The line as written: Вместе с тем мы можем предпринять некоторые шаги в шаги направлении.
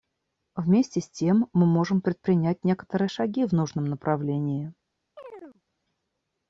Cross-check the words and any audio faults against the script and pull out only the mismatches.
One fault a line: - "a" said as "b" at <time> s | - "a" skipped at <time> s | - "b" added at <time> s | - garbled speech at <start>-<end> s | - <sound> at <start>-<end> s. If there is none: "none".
- "шаги" said as "нужном" at 3.5 s
- chirp at 5.2-5.6 s